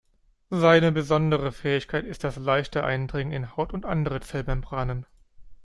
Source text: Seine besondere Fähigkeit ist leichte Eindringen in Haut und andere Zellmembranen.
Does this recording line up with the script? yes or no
no